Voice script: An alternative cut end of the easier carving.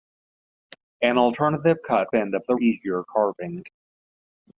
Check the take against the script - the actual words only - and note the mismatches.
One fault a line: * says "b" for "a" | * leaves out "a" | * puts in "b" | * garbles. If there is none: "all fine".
all fine